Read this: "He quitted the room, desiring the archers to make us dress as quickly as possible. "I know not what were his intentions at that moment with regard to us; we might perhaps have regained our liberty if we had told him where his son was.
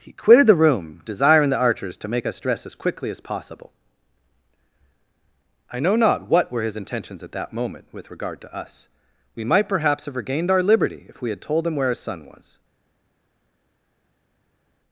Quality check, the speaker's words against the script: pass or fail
pass